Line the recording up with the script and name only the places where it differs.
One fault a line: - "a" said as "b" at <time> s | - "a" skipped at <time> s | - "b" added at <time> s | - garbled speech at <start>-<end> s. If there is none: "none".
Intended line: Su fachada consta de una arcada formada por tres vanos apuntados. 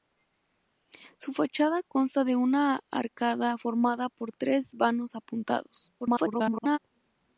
- garbled speech at 6.0-6.8 s